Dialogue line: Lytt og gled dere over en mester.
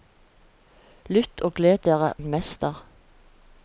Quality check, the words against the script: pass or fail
fail